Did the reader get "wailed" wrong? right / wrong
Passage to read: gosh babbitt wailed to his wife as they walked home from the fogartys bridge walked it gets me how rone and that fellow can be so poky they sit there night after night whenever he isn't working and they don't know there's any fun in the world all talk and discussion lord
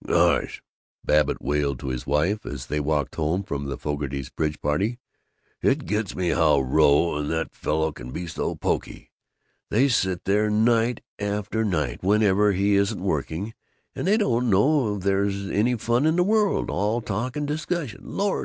right